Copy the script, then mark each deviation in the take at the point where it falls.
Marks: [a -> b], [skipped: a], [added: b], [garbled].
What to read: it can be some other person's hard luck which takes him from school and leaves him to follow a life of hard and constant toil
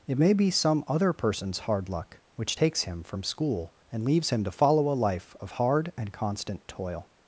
it [can -> may] be some other person's hard luck which takes him from school and leaves him to follow a life of hard and constant toil